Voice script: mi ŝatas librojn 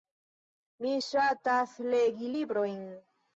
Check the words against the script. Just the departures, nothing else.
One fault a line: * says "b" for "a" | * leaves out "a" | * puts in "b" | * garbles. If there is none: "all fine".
* puts in "legi"